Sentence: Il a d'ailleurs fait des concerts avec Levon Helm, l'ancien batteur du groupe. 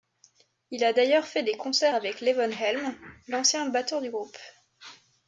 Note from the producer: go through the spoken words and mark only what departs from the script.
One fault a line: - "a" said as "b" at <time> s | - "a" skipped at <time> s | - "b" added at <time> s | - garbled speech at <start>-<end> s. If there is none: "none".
none